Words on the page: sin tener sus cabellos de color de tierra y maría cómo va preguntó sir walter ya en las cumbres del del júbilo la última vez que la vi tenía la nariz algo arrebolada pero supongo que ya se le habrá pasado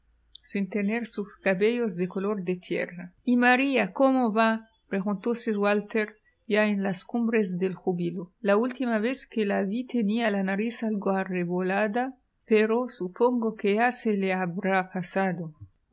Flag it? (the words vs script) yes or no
yes